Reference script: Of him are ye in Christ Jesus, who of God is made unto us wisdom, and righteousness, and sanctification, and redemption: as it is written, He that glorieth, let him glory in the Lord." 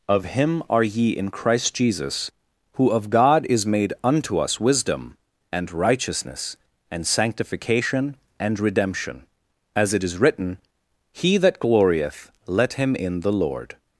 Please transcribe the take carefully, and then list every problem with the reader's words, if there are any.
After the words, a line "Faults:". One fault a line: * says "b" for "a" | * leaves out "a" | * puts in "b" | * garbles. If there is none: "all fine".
Of him are ye in Christ Jesus, who of God is made unto us wisdom, and righteousness, and sanctification, and redemption: as it is written, He that glorieth, let him in the Lord."
Faults:
* leaves out "glory"